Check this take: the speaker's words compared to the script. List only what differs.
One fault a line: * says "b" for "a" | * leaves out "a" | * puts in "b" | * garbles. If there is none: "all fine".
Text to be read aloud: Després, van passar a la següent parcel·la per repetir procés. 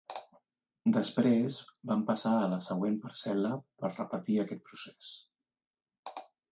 * puts in "aquest"